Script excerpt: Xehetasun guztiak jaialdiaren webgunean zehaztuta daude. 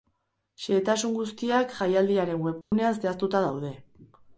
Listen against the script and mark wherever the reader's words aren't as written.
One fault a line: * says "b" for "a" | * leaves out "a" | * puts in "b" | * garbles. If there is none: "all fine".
all fine